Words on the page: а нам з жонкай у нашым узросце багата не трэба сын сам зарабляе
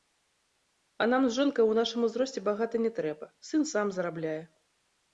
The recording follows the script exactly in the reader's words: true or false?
true